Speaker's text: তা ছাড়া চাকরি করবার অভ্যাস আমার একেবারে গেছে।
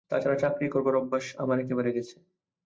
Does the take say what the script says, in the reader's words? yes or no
yes